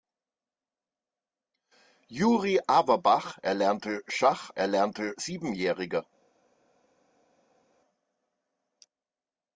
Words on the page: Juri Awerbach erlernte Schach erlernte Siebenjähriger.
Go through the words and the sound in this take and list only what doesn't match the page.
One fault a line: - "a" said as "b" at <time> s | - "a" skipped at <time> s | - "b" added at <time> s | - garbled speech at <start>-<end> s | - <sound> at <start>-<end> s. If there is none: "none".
none